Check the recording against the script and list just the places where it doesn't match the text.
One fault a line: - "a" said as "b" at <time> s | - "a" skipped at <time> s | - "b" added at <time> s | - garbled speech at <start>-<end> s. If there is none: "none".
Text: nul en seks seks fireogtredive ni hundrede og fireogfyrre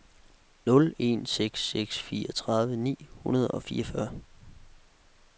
none